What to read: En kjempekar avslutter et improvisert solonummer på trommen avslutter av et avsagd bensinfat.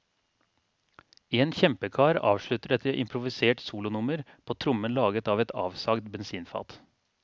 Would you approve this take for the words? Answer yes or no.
no